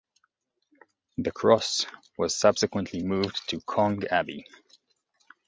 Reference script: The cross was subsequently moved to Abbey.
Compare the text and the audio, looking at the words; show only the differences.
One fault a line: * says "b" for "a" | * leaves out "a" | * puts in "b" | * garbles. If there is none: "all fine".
* puts in "Cong"